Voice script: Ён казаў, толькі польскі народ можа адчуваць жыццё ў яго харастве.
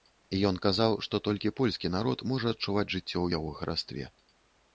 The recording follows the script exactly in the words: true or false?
false